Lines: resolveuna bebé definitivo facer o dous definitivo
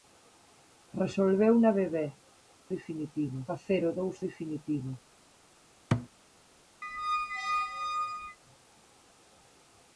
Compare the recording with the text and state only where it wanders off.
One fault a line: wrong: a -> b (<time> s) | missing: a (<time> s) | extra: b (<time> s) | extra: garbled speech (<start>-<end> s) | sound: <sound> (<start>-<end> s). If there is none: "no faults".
sound: thud (5.9-6.1 s)
sound: squeak (6.8-8.4 s)